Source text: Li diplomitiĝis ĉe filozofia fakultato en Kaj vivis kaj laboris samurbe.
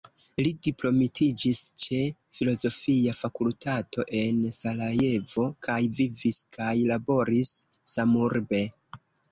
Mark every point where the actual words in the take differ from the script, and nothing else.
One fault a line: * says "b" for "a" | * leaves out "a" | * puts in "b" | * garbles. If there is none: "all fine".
* puts in "Sarajevo"